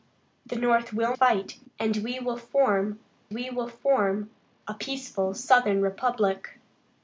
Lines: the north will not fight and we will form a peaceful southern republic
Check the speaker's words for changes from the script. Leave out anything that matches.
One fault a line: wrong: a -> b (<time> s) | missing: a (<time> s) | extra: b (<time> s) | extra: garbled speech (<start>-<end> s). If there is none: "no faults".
missing: not (1.1 s)
extra: we will form (3.3 s)